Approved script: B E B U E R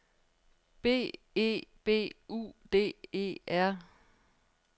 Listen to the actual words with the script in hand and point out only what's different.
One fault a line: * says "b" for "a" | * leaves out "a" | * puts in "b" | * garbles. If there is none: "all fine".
* puts in "D"